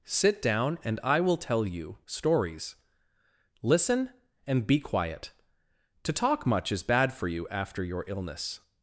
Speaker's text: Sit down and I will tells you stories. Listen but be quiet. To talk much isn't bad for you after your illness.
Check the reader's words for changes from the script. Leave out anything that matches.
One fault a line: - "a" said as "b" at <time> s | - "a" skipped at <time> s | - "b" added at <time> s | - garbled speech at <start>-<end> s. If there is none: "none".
- "tells" said as "tell" at 1.4 s
- "but" said as "and" at 4.5 s
- "isn't" said as "is" at 6.7 s